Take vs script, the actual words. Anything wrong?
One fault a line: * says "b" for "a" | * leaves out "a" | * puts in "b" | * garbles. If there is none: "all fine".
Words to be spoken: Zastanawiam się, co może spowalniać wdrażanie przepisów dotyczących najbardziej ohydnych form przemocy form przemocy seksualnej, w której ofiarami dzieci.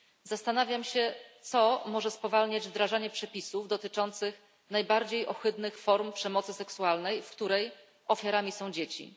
* leaves out "form przemocy"
* puts in "są"